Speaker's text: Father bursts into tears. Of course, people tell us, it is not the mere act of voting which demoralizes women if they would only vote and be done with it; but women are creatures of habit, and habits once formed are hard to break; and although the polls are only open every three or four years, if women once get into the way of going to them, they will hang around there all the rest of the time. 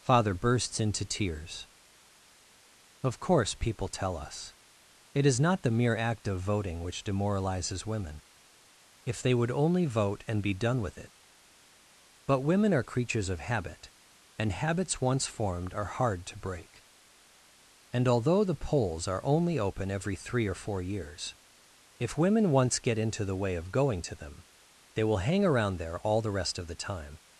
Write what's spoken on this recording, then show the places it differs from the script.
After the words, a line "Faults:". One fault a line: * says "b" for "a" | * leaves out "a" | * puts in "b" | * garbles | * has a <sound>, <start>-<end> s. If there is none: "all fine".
Father bursts into tears. Of course, people tell us, it is not the mere act of voting which demoralizes women if they would only vote and be done with it; but women are creatures of habit, and habits once formed are hard to break; and although the polls are only open every three or four years, if women once get into the way of going to them, they will hang around there all the rest of the time.
Faults:
all fine